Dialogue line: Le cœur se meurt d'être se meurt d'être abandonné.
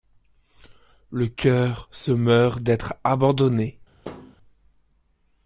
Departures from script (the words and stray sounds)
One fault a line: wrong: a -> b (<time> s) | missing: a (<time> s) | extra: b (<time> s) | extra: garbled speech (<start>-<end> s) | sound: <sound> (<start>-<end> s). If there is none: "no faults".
missing: se meurt d'être (3.0 s)
sound: thud (4.0-4.4 s)